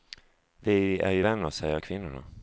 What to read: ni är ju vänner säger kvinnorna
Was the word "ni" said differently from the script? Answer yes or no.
yes